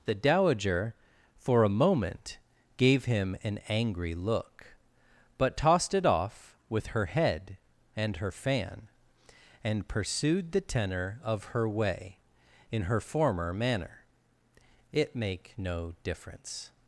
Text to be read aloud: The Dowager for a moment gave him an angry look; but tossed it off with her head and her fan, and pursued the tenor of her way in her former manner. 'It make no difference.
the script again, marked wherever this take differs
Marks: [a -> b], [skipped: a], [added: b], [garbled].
The Dowager for a moment gave him an angry look; but tossed it off with her head and her fan, and pursued the tenor of her way in her former manner. 'It make no difference.